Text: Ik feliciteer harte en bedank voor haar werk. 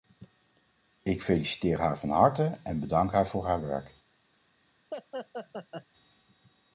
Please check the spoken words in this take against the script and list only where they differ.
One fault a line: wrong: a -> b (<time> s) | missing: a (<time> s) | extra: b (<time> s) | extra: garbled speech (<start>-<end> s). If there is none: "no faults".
extra: haar van (1.8 s)
extra: haar (3.1 s)